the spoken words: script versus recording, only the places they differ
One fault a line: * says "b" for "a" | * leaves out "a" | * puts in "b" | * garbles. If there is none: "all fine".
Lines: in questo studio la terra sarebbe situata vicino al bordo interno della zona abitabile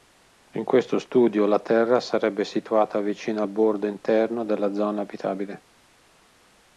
all fine